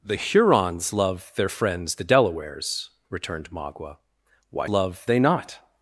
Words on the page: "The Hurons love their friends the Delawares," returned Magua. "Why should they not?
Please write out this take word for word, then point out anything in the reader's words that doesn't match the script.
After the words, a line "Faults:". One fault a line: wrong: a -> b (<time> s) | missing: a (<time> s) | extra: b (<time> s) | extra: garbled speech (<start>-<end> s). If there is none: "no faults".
"The Hurons love their friends the Delawares," returned Magua. "Why love they not?
Faults:
wrong: should -> love (4.7 s)